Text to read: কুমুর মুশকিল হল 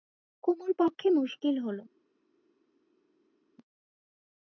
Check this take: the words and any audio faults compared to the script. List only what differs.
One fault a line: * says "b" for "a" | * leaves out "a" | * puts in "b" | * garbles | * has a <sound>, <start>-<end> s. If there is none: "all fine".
* puts in "পক্ষে"